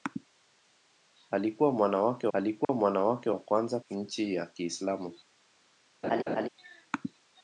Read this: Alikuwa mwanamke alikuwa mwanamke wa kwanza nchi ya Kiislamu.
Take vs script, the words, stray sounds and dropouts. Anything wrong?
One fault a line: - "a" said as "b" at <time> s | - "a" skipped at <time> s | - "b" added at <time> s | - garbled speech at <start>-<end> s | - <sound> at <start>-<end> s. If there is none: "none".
- dropout at 2.6-2.7 s
- laugh at 6.0-6.5 s